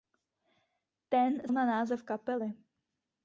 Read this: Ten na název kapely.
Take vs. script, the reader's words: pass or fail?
pass